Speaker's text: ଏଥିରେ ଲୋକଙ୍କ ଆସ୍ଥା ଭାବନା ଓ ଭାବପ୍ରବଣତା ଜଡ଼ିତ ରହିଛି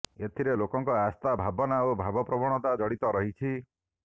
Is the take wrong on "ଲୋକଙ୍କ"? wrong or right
right